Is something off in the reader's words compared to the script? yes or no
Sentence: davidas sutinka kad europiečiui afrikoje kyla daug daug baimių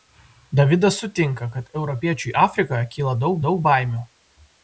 no